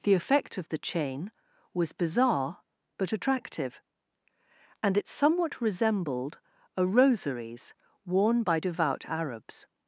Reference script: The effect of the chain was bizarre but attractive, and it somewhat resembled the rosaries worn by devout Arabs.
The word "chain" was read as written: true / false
true